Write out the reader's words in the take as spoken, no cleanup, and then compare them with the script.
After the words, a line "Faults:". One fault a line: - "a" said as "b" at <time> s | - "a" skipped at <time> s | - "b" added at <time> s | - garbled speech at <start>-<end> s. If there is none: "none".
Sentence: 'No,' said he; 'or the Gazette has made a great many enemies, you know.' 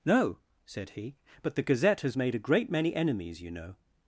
'No,' said he; 'but the Gazette has made a great many enemies, you know.'
Faults:
- "or" said as "but" at 1.4 s